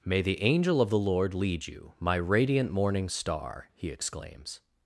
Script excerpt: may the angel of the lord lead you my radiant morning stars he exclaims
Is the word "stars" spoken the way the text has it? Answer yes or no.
no